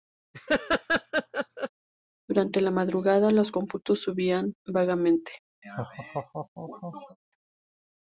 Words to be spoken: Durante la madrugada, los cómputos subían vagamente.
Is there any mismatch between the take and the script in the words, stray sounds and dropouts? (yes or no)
yes